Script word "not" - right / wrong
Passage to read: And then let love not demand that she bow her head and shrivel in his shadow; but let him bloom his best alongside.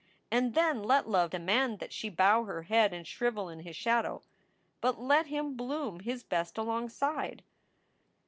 wrong